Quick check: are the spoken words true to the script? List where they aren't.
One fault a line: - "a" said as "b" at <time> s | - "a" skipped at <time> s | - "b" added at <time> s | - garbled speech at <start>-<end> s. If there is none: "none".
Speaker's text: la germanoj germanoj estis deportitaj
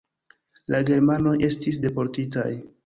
- "germanoj" skipped at 1.4 s